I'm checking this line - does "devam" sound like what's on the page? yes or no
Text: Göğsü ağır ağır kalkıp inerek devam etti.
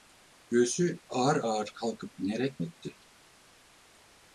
no